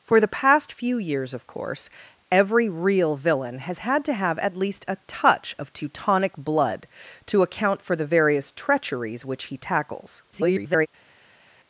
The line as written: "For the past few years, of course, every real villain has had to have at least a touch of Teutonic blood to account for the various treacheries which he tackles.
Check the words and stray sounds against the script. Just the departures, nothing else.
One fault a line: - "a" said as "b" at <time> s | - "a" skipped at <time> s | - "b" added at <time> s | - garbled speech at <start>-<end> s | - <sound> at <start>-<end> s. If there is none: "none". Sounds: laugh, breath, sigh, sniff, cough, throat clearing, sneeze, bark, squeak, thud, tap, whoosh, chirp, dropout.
- garbled speech at 10.3-10.9 s